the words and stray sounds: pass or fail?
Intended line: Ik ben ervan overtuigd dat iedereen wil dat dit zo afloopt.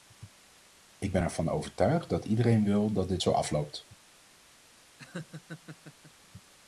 fail